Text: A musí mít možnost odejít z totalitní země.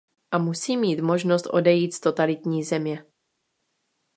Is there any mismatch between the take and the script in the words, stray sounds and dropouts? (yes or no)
no